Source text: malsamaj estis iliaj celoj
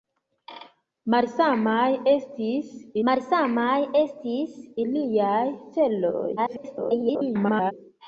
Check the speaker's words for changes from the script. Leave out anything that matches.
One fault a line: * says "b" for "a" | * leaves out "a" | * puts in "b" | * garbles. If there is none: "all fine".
* puts in "malsamaj estis"
* garbles